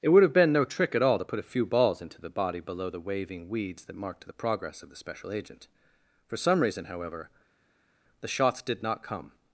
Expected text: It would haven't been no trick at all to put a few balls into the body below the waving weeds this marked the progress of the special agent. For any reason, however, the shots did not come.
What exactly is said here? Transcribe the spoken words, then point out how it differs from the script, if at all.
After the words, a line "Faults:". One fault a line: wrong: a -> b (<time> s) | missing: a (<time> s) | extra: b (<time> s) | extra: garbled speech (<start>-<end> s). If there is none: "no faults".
It would have been no trick at all to put a few balls into the body below the waving weeds that marked the progress of the special agent. For some reason, however, the shots did not come.
Faults:
wrong: haven't -> have (0.2 s)
wrong: this -> that (3.8 s)
wrong: any -> some (6.4 s)